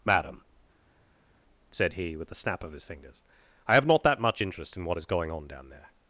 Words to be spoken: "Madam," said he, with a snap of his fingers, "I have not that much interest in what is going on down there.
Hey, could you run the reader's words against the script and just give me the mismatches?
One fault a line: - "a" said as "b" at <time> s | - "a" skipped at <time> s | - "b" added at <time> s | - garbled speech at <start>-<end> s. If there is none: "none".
none